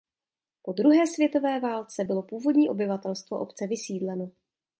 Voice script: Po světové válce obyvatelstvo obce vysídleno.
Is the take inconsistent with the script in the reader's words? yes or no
yes